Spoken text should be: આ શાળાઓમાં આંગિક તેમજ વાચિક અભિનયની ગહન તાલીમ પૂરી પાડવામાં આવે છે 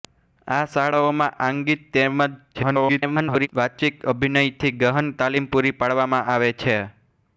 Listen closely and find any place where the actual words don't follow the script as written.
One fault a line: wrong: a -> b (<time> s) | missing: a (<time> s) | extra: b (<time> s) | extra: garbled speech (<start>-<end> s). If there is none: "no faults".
extra: garbled speech (2.5-3.5 s)